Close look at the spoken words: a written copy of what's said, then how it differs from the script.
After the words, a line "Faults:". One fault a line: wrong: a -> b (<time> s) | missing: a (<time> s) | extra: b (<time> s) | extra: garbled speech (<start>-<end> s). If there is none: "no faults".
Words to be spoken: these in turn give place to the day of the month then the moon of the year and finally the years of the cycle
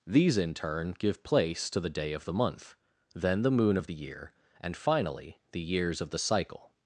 these in turn give place to the day of the month then the moon of the year and finally the years of the cycle
Faults:
no faults